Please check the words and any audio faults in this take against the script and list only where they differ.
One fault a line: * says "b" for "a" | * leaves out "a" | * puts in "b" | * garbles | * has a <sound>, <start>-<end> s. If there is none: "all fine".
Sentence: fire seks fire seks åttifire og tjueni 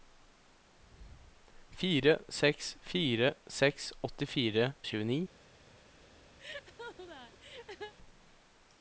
* has a laugh, 6.4-7.9 s